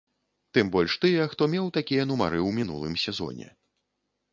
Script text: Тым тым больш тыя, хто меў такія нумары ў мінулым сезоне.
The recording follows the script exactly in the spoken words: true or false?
false